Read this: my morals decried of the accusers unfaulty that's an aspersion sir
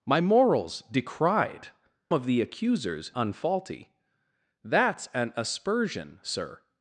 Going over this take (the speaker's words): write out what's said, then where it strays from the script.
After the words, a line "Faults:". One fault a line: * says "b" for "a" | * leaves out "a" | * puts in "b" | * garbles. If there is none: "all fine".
my morals decried of the accusers unfaulty that's an aspersion sir
Faults:
all fine